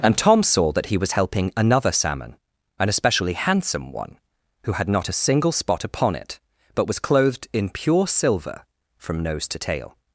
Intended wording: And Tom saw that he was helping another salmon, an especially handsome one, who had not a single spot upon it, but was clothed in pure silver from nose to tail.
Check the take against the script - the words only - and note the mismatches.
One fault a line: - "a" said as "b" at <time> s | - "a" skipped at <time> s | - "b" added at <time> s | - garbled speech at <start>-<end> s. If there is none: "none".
none